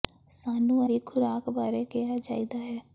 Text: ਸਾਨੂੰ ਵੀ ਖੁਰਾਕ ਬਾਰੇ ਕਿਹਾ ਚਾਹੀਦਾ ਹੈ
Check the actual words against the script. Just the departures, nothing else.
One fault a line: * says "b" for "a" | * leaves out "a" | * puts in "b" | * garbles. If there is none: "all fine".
all fine